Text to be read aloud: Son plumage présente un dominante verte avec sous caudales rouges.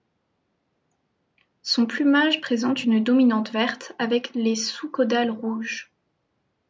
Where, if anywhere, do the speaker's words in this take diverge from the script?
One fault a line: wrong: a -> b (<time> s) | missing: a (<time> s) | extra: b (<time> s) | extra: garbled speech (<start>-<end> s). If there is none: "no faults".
wrong: un -> une (2.8 s)
extra: les (4.3 s)